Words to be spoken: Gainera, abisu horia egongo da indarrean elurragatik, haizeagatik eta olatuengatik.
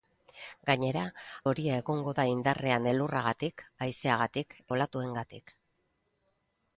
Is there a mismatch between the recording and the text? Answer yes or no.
yes